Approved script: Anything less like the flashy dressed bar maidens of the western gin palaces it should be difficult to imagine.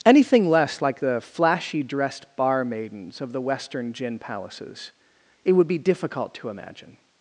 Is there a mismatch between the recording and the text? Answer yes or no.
yes